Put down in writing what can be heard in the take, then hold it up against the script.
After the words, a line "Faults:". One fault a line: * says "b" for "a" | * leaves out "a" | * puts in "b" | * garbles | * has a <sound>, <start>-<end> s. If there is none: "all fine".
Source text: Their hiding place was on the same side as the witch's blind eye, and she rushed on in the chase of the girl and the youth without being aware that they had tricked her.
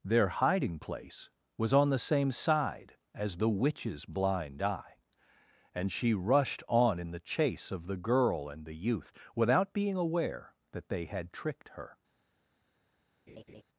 Their hiding place was on the same side as the witch's blind eye, and she rushed on in the chase of the girl and the youth without being aware that they had tricked her.
Faults:
* has a laugh, 13.3-13.6 s